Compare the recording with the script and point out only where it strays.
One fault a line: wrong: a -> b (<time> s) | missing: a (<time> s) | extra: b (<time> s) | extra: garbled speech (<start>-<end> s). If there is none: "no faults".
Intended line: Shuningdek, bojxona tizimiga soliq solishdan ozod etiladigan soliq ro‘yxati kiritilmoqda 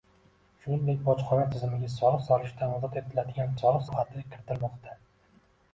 no faults